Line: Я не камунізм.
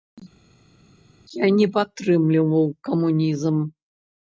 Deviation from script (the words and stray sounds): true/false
true